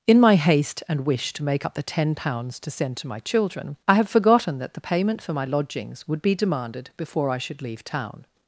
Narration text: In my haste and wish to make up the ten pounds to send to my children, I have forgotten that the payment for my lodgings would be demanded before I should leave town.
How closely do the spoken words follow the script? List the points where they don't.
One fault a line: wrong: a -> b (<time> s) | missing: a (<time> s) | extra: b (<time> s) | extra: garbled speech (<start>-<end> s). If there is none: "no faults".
no faults